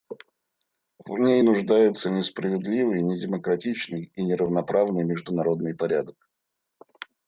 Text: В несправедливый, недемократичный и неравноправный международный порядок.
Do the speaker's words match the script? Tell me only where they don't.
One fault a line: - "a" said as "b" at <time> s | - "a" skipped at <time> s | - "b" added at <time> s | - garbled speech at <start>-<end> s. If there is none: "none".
- "ней нуждается" added at 1.2 s